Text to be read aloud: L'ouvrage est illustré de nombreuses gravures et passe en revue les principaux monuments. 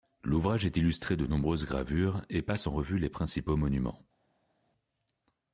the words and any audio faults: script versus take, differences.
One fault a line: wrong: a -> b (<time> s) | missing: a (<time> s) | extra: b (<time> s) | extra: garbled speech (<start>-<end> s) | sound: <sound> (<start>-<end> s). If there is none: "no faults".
no faults